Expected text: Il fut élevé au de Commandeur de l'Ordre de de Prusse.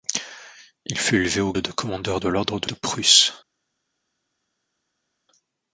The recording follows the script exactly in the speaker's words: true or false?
true